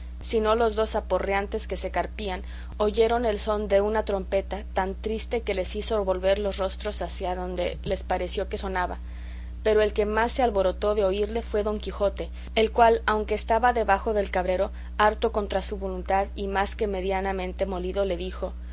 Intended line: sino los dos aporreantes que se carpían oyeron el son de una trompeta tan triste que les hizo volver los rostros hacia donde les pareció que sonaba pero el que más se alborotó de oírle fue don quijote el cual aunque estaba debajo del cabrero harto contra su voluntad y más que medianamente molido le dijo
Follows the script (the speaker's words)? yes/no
yes